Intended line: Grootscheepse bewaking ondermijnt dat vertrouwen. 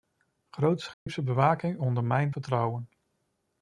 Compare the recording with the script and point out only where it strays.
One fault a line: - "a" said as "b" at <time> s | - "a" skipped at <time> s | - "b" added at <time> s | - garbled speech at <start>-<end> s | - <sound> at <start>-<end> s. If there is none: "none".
- dropout at 0.9-1.1 s
- "dat" skipped at 2.3 s